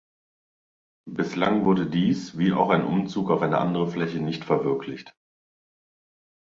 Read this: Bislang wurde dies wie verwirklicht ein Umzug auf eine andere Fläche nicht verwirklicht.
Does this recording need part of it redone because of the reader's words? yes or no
yes